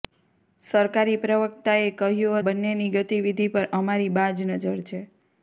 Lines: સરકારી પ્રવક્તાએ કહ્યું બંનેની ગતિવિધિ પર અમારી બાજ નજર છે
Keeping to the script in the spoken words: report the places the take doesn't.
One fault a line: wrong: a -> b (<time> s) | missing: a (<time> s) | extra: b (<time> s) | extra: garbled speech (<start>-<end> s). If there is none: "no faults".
no faults